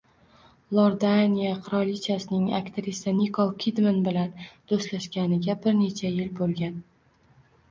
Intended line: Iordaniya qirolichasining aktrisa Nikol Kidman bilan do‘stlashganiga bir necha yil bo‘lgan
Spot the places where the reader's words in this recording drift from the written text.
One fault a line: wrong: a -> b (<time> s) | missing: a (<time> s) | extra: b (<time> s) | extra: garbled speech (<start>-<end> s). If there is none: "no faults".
no faults